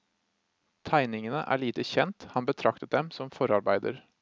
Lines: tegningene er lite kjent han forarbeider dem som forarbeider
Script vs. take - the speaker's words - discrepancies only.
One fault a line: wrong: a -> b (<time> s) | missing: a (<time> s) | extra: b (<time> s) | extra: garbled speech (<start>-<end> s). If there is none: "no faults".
wrong: forarbeider -> betraktet (2.5 s)